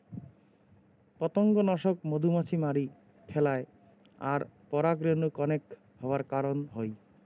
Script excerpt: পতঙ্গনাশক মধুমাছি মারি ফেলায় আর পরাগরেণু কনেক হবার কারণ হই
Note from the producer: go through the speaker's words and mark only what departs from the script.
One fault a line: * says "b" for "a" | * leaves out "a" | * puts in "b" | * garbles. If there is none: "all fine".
all fine